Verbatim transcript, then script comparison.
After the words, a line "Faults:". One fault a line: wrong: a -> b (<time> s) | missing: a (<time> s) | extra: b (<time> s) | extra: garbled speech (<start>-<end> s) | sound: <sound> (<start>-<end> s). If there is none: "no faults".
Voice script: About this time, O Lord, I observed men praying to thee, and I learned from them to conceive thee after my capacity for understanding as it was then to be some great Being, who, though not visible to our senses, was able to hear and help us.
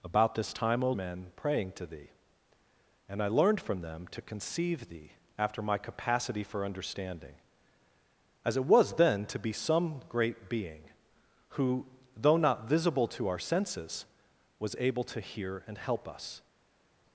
About this time, O Men praying to thee, and I learned from them to conceive thee after my capacity for understanding as it was then to be some great Being, who, though not visible to our senses, was able to hear and help us.
Faults:
missing: Lord I observed (0.9 s)